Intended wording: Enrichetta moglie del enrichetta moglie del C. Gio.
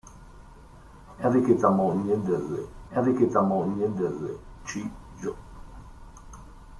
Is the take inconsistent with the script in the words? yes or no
no